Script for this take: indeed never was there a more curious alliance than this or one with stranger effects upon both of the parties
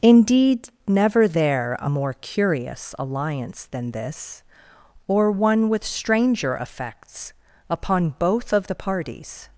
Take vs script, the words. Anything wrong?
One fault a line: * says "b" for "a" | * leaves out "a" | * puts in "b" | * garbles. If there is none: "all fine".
* leaves out "was"